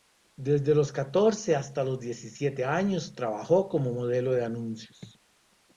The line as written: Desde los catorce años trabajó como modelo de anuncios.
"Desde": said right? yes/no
yes